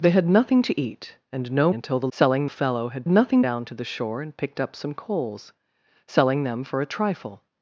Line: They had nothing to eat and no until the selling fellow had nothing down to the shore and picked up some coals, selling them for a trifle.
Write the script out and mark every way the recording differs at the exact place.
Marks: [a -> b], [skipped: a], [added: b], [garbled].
They had nothing to eat and no until the selling fellow had nothing down to the shore and picked up some coals, selling them for a trifle.